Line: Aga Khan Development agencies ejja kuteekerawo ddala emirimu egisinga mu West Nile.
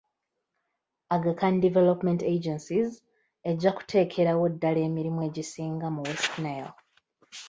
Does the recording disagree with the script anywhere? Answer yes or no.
no